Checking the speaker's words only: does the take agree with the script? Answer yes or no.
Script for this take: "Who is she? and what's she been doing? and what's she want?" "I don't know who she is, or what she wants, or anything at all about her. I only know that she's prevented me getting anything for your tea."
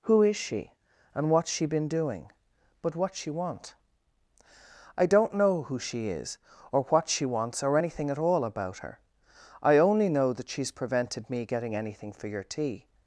no